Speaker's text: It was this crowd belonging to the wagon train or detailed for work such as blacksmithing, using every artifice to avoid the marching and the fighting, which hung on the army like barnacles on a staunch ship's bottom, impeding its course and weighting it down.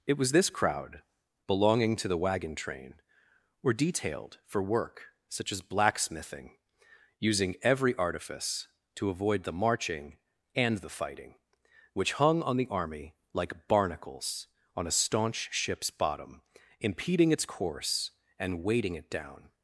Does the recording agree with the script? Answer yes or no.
no